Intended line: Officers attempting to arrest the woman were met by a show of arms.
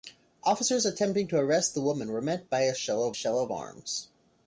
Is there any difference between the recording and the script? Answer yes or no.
yes